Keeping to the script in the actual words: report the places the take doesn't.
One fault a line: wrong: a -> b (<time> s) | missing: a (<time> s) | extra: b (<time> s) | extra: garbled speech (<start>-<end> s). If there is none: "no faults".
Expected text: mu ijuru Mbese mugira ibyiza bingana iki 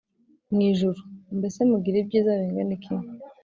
no faults